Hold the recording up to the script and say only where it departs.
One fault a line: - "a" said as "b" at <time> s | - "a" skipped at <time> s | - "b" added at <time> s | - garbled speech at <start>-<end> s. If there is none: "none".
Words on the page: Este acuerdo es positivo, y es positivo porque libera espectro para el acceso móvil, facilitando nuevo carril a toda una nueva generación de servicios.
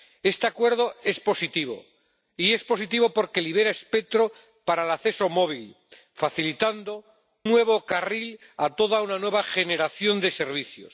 none